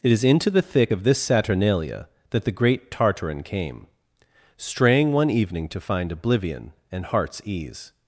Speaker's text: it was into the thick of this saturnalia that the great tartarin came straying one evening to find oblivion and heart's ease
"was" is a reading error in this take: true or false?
true